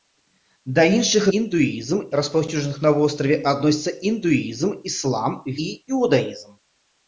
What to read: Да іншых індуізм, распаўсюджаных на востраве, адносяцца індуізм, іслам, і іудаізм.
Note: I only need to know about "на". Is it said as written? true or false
true